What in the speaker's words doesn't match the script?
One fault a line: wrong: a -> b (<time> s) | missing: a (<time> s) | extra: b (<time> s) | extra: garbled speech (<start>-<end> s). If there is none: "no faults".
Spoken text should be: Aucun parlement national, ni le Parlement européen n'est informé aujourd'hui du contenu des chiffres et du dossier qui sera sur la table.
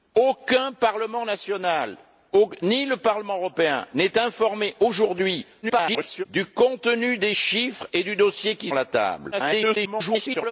extra: garbled speech (5.6-6.2 s)
missing: sera sur (8.7 s)
extra: garbled speech (9.3-10.5 s)